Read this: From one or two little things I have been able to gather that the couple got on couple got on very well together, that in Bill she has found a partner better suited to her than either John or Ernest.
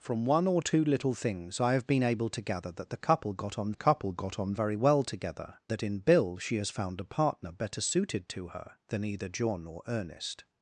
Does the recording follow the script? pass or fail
pass